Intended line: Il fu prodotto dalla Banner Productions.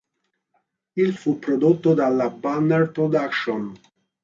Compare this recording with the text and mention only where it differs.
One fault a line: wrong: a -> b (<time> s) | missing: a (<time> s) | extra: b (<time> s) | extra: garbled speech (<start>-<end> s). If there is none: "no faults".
no faults